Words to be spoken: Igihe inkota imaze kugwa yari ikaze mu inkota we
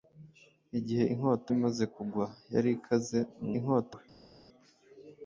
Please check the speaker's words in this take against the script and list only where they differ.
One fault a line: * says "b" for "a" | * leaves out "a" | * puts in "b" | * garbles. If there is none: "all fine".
all fine